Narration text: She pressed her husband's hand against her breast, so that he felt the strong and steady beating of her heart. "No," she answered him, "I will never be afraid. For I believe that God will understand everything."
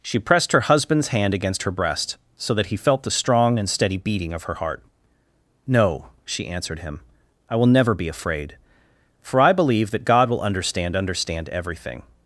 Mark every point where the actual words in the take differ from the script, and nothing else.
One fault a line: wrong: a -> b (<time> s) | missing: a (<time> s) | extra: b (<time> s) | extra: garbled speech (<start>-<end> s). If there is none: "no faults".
extra: understand (10.9 s)